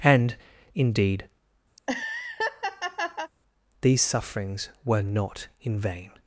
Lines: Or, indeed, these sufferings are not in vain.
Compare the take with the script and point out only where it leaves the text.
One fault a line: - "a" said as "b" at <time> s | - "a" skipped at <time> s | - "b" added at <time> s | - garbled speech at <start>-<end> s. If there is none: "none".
- "Or" said as "And" at 0.0 s
- "are" said as "were" at 4.8 s